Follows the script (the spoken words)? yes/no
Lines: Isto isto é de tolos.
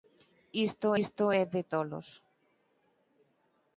yes